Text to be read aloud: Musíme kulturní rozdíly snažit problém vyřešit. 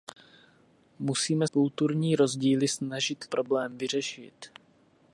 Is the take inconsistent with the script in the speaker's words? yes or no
no